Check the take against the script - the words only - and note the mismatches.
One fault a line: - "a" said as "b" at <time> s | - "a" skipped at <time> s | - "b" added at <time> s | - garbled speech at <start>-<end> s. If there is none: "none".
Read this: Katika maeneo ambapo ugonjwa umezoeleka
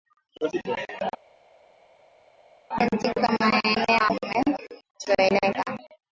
- "ambapo ugonjwa" skipped at 4.1 s